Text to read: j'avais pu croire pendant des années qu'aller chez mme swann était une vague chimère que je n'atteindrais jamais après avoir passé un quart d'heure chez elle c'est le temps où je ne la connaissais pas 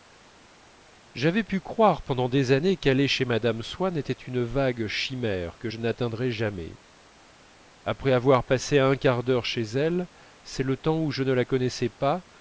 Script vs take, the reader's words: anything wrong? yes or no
no